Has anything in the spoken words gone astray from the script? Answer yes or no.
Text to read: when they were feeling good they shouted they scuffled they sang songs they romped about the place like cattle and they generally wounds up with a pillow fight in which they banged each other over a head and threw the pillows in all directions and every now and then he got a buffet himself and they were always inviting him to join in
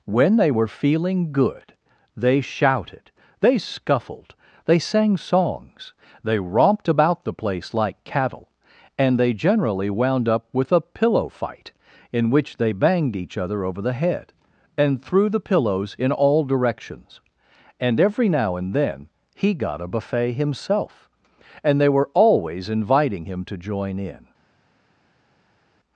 yes